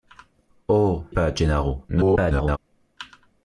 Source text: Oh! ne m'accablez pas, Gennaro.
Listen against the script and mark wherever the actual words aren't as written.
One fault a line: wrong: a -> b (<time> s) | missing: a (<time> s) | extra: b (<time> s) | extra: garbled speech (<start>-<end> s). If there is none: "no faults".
missing: ne m'accablez (1.1 s)
extra: garbled speech (1.9-2.6 s)